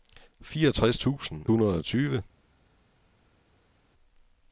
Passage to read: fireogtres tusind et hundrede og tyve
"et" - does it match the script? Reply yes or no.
no